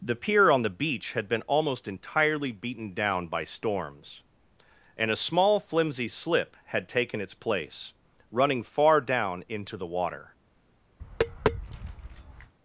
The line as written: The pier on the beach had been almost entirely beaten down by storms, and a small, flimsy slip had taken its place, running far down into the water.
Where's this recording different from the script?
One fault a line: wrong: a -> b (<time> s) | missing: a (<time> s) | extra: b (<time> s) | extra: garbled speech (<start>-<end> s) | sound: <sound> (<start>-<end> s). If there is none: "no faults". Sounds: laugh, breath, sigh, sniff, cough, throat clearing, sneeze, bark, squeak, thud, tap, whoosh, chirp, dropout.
sound: tap (11.0-12.5 s)